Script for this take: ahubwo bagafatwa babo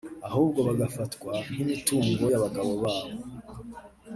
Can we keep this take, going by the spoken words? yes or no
no